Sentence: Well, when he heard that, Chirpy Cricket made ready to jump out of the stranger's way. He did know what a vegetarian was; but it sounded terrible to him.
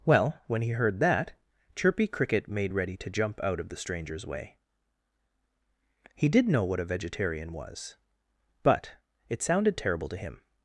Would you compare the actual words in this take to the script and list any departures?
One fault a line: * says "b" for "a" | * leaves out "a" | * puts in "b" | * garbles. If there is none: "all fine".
all fine